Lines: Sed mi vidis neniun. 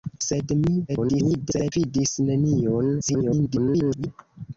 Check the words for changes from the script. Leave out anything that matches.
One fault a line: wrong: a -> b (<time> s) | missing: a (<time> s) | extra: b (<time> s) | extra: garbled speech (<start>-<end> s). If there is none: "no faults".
extra: garbled speech (0.9-1.7 s)
extra: garbled speech (3.0-4.1 s)